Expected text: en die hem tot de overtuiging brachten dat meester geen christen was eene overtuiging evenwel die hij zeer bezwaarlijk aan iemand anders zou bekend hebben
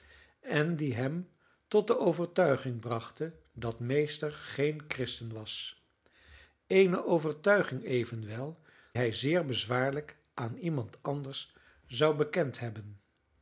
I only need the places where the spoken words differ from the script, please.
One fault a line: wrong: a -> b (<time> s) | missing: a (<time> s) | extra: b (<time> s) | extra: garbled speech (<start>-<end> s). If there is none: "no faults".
missing: die (8.6 s)